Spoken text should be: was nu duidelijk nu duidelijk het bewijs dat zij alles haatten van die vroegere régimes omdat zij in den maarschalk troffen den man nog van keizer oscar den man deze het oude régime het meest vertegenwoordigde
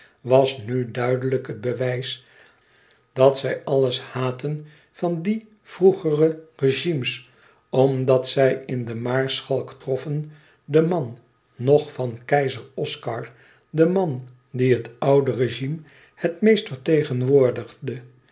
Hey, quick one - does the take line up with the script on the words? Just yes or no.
no